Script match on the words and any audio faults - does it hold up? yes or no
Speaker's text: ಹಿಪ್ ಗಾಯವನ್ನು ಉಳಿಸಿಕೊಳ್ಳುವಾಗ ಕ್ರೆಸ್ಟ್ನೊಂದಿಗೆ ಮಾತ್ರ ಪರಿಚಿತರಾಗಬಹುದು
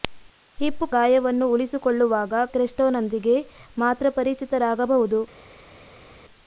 yes